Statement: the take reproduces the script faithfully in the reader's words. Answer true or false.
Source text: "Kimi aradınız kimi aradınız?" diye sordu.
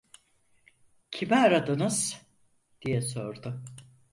false